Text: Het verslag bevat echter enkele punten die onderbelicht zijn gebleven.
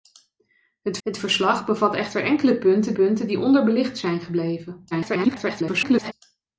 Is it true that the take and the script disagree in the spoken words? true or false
true